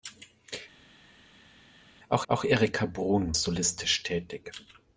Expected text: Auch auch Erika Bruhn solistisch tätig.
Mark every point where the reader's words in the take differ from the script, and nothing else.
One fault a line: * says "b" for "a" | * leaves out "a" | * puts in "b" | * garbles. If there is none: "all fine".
all fine